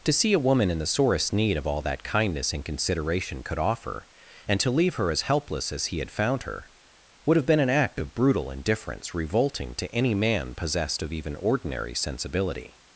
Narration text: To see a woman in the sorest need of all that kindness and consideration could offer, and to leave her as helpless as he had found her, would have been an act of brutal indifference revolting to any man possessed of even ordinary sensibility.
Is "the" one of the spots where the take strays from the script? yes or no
no